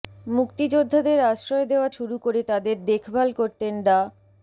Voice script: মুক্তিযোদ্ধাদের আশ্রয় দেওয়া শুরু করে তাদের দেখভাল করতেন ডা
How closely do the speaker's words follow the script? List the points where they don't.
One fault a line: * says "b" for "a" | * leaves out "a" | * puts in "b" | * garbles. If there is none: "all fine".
all fine